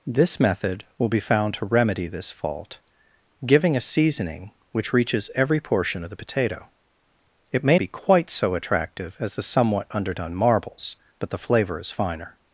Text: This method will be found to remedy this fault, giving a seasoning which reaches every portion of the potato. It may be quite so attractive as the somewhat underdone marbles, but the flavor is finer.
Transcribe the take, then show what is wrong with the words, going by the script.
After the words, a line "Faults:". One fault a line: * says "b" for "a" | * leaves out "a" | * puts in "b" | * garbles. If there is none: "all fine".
This method will be found to remedy this fault, giving a seasoning which reaches every portion of the potato. It may be quite so attractive as the somewhat underdone marbles, but the flavor is finer.
Faults:
all fine